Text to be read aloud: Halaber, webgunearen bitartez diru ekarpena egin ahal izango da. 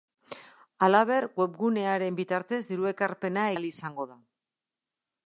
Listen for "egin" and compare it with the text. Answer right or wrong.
wrong